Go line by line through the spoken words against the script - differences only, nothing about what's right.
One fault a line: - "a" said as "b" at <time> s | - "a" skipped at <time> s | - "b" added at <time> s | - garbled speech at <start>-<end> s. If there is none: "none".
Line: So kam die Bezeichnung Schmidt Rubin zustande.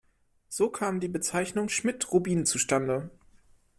none